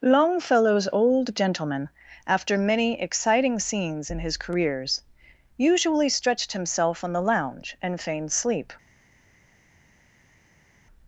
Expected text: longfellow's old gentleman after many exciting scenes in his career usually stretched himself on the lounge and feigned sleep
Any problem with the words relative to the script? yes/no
yes